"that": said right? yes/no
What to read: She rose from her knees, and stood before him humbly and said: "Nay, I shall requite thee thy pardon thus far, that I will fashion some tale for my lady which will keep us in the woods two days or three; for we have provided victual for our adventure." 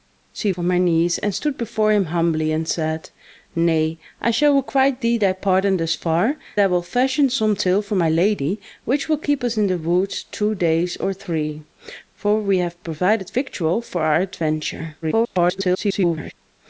no